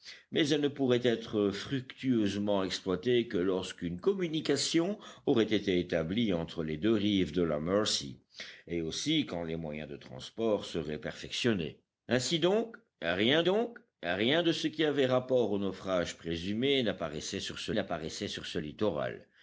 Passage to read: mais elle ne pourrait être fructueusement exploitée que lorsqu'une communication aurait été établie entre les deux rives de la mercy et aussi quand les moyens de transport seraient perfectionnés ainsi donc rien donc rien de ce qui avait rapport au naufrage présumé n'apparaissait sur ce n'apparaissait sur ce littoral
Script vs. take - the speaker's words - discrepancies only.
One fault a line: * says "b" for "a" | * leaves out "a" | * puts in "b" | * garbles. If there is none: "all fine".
all fine